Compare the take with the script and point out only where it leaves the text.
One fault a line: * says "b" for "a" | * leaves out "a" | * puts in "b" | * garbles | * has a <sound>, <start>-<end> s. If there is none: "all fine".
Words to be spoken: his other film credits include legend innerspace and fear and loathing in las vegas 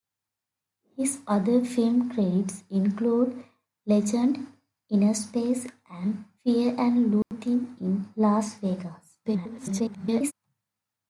* has a dropout, 7.2-7.3 s
* garbles